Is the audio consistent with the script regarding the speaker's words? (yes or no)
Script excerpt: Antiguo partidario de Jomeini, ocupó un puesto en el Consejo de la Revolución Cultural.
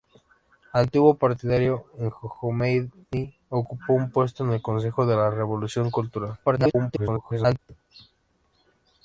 no